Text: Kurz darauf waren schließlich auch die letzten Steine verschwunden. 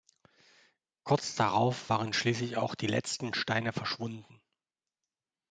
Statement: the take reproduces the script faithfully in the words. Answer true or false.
true